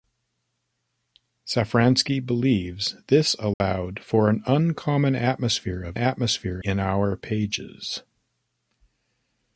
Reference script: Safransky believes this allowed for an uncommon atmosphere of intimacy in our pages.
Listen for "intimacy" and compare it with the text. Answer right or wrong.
wrong